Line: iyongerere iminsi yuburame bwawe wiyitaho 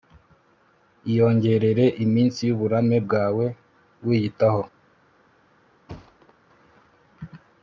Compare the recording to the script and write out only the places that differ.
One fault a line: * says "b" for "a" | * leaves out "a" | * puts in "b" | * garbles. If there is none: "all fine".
all fine